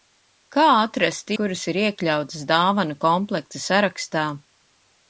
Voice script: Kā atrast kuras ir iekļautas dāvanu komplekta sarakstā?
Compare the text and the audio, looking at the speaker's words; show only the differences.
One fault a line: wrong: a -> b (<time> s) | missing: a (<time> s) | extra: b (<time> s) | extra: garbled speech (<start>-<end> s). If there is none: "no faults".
no faults